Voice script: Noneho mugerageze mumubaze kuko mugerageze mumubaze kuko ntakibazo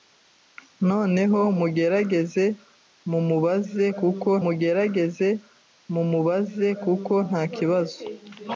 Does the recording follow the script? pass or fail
pass